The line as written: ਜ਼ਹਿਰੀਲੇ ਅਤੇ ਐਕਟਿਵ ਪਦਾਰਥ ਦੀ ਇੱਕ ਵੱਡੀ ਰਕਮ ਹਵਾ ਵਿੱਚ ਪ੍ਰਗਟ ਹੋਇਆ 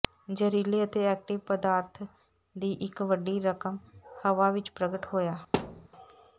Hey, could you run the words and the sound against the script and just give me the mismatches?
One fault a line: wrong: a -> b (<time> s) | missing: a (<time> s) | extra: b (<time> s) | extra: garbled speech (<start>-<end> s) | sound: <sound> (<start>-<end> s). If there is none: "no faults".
sound: thud (5.5-5.9 s)